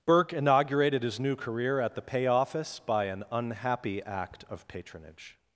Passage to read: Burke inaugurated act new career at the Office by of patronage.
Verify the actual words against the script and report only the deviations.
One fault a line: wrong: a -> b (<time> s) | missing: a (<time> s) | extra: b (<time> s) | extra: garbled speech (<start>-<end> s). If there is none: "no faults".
wrong: act -> his (1.0 s)
extra: Pay (2.0 s)
extra: an unhappy act (3.0 s)